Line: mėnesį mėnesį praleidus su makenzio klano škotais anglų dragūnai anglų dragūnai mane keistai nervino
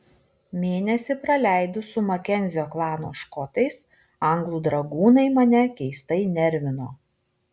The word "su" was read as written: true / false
true